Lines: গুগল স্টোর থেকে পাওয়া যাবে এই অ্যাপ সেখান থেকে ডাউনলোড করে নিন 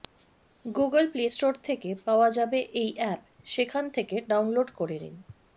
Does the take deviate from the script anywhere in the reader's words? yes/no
yes